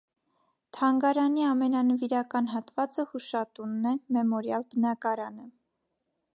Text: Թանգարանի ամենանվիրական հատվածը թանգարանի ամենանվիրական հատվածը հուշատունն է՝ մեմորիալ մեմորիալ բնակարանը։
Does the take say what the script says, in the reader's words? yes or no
no